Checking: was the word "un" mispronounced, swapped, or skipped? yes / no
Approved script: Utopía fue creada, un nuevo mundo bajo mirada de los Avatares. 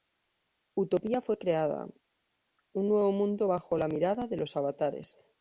no